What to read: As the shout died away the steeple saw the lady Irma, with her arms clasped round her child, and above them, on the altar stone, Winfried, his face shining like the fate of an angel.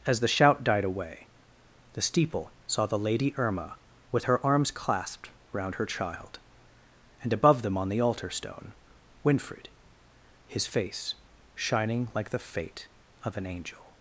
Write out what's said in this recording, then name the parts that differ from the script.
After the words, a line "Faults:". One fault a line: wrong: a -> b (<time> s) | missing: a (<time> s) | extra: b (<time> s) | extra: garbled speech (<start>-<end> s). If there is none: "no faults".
As the shout died away the steeple saw the lady Irma, with her arms clasped round her child, and above them, on the altar stone, Winfried, his face shining like the fate of an angel.
Faults:
no faults